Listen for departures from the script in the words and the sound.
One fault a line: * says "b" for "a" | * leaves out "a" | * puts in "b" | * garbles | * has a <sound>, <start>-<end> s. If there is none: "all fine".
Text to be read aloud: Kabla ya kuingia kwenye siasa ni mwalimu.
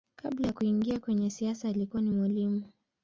* puts in "alikuwa"